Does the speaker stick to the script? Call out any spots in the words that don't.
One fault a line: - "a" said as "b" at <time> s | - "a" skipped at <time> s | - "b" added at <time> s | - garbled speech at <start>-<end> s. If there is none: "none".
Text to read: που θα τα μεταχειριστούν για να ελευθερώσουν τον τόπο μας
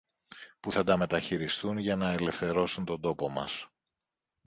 none